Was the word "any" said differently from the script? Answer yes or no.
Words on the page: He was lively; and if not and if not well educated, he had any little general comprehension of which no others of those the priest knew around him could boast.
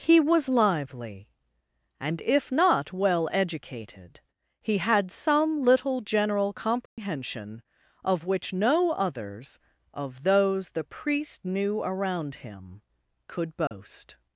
yes